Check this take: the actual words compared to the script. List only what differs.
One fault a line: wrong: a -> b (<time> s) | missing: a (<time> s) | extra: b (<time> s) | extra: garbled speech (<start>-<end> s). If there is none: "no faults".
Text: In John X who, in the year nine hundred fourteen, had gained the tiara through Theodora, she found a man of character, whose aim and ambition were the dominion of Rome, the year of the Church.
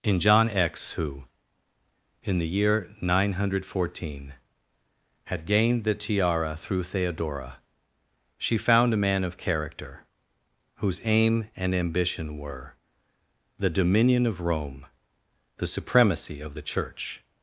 wrong: year -> supremacy (15.7 s)